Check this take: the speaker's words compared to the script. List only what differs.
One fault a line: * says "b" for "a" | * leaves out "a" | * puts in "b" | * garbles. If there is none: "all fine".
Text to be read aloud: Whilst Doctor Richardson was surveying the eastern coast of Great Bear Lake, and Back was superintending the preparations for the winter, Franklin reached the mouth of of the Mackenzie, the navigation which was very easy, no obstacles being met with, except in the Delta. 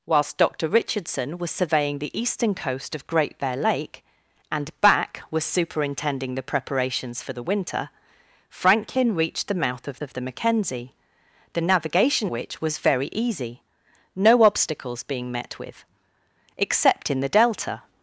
all fine